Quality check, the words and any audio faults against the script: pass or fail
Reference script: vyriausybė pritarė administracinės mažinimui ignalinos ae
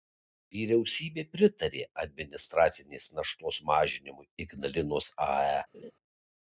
fail